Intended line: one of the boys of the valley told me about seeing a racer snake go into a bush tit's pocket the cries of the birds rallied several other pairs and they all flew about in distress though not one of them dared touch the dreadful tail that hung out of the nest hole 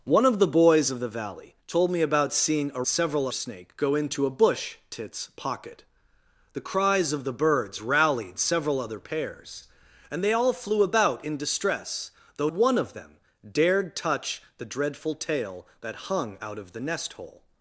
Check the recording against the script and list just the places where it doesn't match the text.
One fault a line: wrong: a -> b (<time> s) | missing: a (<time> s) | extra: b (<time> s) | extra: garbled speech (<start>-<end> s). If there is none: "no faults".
wrong: racer -> several (2.9 s)
missing: not (12.5 s)